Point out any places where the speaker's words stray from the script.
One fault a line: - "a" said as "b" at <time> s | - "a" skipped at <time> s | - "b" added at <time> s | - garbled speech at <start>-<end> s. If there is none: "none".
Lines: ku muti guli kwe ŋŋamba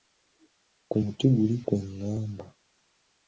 none